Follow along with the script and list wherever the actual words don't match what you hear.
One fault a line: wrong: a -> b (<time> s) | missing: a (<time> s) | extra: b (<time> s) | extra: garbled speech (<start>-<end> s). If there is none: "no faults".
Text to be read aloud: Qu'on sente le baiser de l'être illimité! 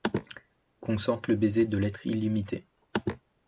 no faults